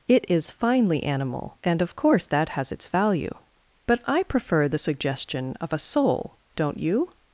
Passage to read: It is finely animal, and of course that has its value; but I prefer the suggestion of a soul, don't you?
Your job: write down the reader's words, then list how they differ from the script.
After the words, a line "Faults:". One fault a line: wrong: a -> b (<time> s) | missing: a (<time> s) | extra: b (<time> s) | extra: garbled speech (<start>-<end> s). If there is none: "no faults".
It is finely animal, and of course that has its value; but I prefer the suggestion of a soul, don't you?
Faults:
no faults